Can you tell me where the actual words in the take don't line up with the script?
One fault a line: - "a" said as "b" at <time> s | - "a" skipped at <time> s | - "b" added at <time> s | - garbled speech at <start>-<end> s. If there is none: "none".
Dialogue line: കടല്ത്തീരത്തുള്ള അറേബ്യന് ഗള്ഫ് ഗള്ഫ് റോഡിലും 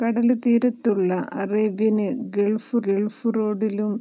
none